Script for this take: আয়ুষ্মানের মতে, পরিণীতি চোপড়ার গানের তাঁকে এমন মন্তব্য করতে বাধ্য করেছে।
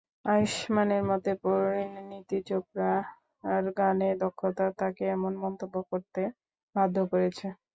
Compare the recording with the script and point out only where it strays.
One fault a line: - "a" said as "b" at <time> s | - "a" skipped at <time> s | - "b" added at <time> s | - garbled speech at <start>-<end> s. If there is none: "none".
- "দক্ষতা" added at 4.2 s